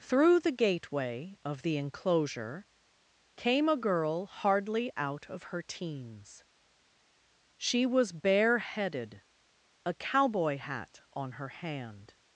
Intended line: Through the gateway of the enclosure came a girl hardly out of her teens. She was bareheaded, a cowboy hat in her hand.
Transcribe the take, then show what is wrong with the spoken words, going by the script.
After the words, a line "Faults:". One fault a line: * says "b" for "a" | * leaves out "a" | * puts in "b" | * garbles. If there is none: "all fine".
Through the gateway of the enclosure came a girl hardly out of her teens. She was bareheaded, a cowboy hat on her hand.
Faults:
* says "on" for "in"